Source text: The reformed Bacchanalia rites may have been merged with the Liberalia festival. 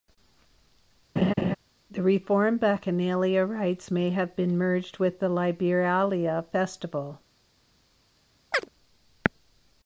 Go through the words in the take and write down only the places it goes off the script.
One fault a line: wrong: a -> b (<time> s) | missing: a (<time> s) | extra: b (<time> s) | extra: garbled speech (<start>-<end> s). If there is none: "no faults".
no faults